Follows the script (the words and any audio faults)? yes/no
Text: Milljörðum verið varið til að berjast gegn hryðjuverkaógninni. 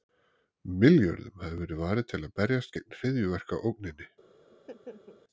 no